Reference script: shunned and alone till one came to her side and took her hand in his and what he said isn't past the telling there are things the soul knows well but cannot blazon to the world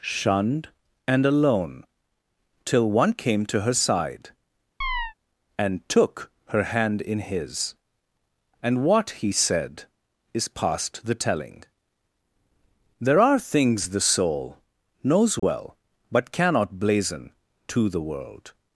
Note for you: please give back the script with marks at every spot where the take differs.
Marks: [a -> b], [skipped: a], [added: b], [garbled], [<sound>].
shunned and alone till one came to her side [chirp] and took her hand in his and what he said [isn't -> is] past the telling there are things the soul knows well [dropout] but cannot blazon to the world